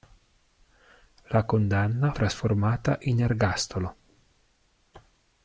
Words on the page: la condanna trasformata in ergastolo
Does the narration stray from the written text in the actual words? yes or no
no